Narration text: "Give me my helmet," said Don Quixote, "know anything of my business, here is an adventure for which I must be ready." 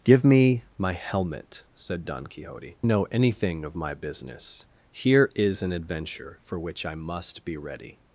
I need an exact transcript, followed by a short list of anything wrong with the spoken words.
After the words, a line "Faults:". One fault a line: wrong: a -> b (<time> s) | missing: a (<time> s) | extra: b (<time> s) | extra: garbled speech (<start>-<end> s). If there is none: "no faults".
"Give me my helmet," said Don Quixote, "know anything of my business, here is an adventure for which I must be ready."
Faults:
no faults